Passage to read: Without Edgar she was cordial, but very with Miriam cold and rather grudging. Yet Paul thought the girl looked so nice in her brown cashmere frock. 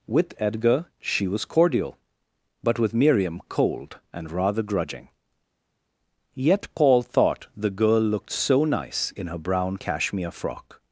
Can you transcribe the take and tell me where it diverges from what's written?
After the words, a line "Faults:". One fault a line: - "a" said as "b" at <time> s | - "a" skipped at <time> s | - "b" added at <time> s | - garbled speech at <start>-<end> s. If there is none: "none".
With Edgar she was cordial, but with Miriam cold and rather grudging. Yet Paul thought the girl looked so nice in her brown cashmere frock.
Faults:
- "Without" said as "With" at 0.1 s
- "very" skipped at 2.8 s